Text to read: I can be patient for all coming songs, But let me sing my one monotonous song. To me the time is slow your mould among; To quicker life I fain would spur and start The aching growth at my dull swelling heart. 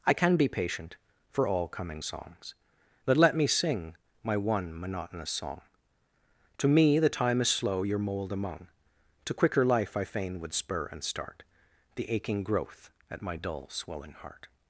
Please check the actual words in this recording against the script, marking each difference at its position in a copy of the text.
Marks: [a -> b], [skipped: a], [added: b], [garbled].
I can be patient for all coming songs, But let me sing my one monotonous song. To me the time is slow your mould among; To quicker life I fain would spur and start The aching growth at my dull swelling heart.